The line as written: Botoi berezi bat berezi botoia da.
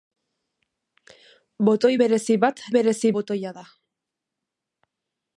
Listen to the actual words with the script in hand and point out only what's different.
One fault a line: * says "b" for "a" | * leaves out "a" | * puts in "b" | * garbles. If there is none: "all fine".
all fine